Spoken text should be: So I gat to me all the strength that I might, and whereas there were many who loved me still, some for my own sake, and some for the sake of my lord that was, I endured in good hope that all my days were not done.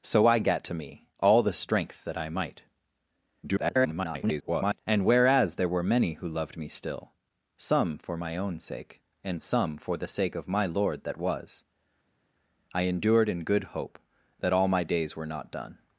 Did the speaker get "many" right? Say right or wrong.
right